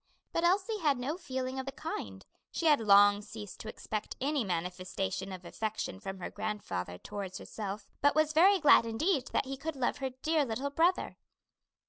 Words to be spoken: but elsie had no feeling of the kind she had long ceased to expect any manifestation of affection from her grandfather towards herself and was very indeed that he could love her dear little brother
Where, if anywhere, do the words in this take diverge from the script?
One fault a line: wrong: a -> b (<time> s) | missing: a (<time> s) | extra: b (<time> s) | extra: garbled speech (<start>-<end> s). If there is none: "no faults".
wrong: and -> but (8.0 s)
extra: glad (8.6 s)